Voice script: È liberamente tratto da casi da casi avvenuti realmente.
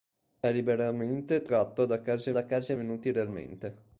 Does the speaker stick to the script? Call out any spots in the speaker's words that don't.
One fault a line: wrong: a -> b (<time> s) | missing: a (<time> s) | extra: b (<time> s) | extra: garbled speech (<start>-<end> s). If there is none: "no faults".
no faults